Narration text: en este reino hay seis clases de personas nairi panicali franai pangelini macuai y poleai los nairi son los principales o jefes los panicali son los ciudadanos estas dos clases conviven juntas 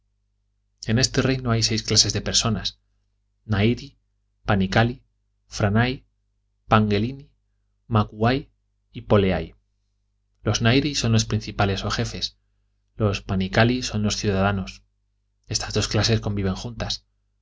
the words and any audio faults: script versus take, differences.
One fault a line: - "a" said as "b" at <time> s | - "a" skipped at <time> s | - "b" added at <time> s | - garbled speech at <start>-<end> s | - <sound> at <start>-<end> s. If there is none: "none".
none